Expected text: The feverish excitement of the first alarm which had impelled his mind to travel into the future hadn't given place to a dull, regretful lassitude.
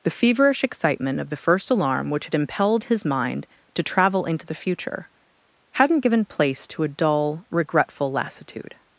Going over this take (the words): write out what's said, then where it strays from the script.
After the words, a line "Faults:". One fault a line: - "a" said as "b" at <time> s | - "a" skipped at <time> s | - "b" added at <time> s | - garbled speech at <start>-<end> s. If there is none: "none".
The feverish excitement of the first alarm which had impelled his mind to travel into the future hadn't given place to a dull, regretful lassitude.
Faults:
none